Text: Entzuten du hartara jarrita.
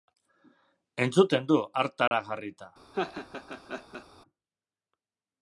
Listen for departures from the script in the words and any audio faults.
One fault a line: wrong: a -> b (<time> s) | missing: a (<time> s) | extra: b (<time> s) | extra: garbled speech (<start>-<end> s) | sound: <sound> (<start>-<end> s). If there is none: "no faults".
sound: dropout (2.1-2.1 s)
sound: laugh (2.9-4.1 s)